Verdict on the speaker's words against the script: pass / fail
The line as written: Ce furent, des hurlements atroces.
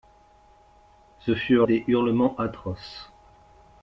pass